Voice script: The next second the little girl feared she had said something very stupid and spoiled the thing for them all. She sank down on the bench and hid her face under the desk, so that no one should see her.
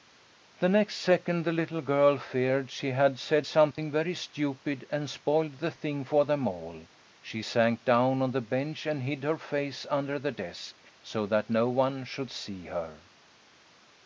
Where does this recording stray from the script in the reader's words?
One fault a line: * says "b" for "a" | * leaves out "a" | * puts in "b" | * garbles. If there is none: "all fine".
all fine